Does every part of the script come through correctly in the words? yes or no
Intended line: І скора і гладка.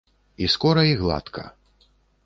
yes